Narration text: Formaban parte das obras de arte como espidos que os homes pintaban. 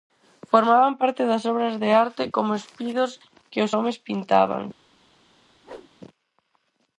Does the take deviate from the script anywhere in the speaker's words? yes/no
no